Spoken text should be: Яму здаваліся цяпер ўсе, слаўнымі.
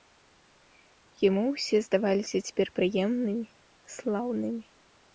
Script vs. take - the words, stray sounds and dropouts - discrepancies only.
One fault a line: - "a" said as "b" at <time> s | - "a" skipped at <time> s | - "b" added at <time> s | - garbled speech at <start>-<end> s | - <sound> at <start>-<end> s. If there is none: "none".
- "ўсе" added at 1.5 s
- "ўсе" said as "прыемнымі" at 2.8 s